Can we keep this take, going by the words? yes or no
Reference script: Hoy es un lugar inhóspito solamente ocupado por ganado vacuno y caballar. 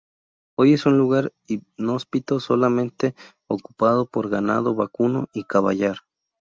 yes